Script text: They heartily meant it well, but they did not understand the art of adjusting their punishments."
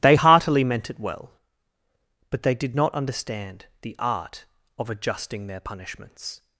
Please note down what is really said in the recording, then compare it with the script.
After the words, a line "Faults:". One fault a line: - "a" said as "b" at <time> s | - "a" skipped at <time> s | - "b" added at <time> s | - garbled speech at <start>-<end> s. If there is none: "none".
They heartily meant it well, but they did not understand the art of adjusting their punishments."
Faults:
none